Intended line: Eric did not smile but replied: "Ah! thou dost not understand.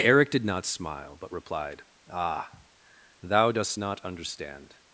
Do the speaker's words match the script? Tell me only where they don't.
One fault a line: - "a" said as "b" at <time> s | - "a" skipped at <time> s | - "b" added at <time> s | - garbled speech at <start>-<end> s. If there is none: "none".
none